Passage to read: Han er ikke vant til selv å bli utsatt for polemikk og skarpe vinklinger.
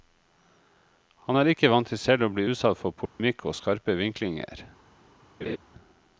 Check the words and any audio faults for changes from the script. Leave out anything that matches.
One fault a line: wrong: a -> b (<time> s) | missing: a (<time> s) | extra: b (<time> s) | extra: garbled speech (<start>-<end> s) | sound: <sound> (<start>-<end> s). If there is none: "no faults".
sound: dropout (3.1-3.2 s)
sound: laugh (5.4-5.6 s)